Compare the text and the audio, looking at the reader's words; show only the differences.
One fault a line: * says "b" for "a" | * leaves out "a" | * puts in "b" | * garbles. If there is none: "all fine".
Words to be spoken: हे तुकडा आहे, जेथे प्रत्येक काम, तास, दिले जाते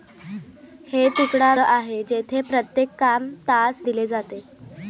all fine